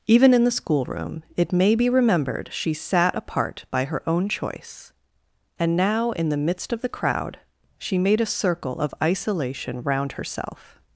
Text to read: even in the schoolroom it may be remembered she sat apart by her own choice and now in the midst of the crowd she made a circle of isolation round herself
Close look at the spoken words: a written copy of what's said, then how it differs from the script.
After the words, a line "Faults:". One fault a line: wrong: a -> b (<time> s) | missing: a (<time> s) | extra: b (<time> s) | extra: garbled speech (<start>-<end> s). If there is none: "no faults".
even in the schoolroom it may be remembered she sat apart by her own choice and now in the midst of the crowd she made a circle of isolation round herself
Faults:
no faults